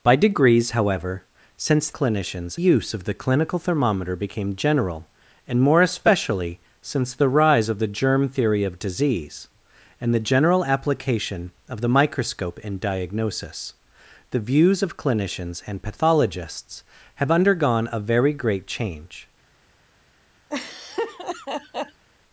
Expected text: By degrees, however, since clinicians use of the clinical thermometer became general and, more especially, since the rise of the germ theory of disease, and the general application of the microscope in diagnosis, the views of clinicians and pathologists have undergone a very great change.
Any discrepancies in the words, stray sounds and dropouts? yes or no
yes